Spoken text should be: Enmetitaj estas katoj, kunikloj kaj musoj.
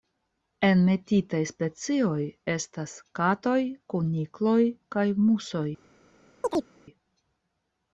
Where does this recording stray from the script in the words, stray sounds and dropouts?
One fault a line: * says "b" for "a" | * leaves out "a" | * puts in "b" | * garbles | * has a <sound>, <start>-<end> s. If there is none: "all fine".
* puts in "specioj"
* has a chirp, 6.4-6.7 s